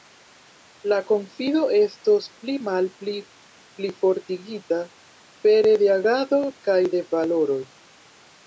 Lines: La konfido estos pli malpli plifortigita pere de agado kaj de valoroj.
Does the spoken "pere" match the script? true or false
true